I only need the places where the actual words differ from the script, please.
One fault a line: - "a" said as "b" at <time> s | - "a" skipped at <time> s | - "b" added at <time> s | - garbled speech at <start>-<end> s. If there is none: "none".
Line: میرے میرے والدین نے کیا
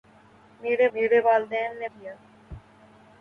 none